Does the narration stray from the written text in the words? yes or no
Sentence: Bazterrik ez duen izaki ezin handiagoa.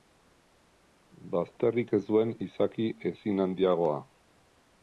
no